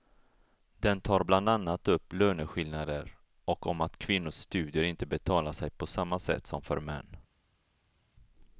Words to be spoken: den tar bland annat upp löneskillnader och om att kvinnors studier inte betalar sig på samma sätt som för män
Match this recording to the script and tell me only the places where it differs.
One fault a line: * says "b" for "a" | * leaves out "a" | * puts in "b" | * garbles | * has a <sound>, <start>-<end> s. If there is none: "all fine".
all fine